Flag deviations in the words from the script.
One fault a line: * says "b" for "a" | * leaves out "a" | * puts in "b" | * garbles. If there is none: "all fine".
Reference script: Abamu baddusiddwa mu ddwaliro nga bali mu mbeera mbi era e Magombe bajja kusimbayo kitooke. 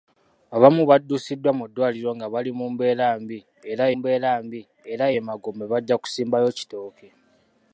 * puts in "mbeera mbi era"